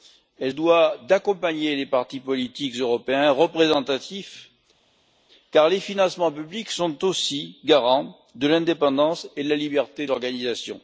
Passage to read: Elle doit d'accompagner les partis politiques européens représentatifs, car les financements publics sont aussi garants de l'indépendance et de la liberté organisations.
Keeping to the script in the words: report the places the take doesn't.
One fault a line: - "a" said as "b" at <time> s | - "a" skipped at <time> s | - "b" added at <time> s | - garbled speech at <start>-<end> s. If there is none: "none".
none